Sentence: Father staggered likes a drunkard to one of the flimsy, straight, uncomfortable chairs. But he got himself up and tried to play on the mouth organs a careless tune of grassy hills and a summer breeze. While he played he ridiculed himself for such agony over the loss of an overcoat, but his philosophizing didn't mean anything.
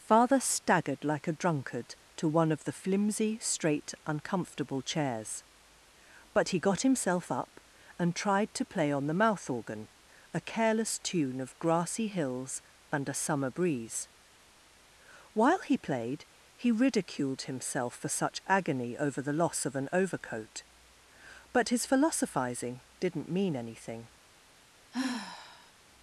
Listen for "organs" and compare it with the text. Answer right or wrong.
wrong